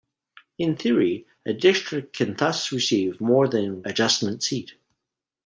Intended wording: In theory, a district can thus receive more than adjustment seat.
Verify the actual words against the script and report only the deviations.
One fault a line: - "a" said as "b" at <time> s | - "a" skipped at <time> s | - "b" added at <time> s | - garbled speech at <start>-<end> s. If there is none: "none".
none